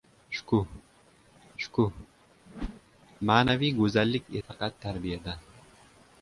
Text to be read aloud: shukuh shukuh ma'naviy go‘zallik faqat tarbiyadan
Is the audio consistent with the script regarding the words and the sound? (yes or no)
no